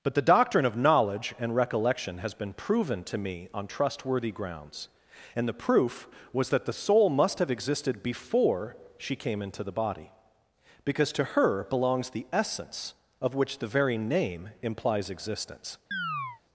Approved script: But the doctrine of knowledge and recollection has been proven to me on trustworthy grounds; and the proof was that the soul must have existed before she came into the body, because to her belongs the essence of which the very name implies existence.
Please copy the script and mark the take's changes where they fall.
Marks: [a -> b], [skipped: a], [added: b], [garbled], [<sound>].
But the doctrine of knowledge and recollection has been proven to me on trustworthy grounds; and the proof was that the soul must have existed before she came into the body, because to her belongs the essence of which the very name implies existence. [chirp]